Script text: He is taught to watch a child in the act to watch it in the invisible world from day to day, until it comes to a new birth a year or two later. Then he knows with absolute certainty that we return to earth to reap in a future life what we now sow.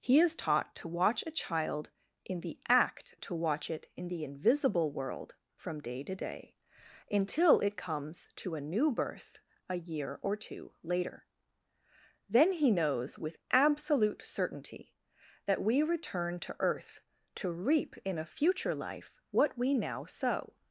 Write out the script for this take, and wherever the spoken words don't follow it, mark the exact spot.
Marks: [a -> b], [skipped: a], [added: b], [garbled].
He is taught to watch a child in the act to watch it in the invisible world from day to day, until it comes to a new birth a year or two later. Then he knows with absolute certainty that we return to earth to reap in a future life what we now sow.